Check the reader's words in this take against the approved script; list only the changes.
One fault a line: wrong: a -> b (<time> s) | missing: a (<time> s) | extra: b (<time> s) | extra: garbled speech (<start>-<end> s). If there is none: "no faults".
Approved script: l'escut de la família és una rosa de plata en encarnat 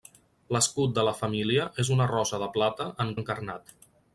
no faults